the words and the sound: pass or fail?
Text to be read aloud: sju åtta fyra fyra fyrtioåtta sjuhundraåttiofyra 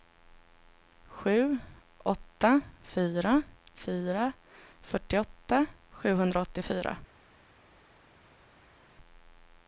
pass